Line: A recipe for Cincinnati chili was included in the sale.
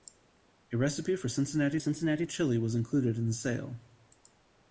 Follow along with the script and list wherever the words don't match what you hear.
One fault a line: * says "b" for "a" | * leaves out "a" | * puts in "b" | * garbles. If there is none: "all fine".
* puts in "Cincinnati"